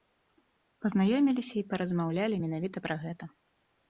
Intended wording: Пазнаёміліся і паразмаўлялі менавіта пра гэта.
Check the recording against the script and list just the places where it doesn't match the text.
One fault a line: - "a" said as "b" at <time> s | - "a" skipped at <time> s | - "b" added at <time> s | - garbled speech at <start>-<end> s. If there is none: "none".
none